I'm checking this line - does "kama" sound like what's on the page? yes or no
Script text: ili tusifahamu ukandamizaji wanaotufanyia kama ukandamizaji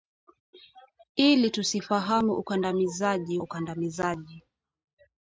no